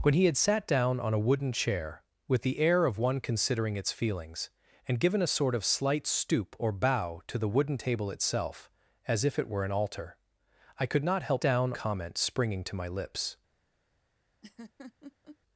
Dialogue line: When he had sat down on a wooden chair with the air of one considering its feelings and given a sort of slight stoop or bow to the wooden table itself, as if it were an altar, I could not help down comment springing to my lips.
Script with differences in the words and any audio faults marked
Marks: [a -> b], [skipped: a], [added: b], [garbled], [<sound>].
When he had sat down on a wooden chair with the air of one considering its feelings and given a sort of slight stoop or bow to the wooden table itself, as if it were an altar, I could not help down comment springing to my lips. [laugh]